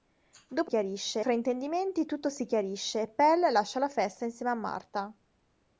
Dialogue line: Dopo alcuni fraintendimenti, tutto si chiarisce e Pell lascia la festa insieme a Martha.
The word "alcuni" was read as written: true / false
false